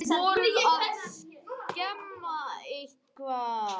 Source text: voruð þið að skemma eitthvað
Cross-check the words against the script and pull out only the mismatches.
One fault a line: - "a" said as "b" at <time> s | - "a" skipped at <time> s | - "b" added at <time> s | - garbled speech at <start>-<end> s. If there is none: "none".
none